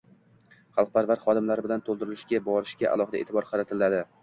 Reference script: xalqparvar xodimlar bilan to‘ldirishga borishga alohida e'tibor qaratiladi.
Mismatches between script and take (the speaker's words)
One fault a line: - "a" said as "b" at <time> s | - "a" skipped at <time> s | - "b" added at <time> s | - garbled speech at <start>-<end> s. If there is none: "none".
none